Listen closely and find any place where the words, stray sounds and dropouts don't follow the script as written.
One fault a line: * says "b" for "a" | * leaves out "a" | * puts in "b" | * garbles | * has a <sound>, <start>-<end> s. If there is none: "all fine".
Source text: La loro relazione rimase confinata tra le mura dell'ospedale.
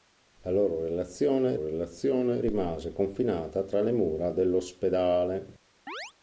* puts in "relazione"
* has a chirp, 5.9-6.1 s